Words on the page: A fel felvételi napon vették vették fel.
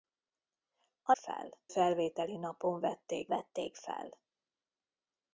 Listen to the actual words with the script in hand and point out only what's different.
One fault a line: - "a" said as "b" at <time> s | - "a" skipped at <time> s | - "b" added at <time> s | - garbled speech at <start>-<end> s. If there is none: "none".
none